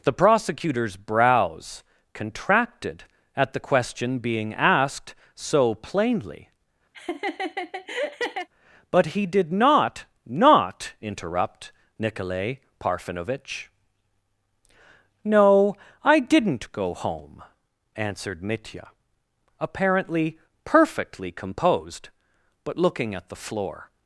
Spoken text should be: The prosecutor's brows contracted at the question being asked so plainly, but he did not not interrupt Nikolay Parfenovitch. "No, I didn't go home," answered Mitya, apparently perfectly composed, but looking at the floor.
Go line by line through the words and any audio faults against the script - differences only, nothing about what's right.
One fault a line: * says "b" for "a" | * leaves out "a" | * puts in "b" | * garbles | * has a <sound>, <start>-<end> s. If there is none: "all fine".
* has a laugh, 6.9-8.5 s